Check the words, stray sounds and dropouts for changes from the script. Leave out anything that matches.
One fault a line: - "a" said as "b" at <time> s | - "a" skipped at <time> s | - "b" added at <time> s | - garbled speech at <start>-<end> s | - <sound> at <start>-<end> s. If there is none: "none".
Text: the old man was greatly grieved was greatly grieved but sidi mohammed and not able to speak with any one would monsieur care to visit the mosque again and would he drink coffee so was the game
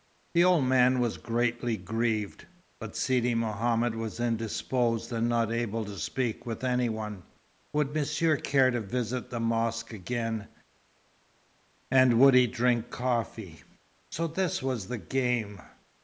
- "was greatly grieved" skipped at 2.5 s
- "was indisposed" added at 3.9 s
- "this" added at 14.3 s